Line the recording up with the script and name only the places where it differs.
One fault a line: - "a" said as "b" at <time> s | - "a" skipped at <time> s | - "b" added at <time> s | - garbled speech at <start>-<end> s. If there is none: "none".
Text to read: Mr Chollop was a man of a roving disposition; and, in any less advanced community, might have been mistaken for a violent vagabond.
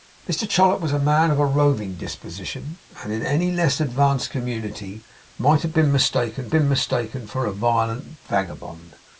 - "been mistaken" added at 6.5 s